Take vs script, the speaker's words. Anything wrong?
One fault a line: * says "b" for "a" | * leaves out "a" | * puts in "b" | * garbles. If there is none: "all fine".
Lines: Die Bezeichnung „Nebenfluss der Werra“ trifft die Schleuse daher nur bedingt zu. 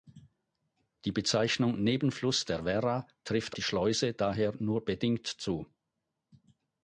all fine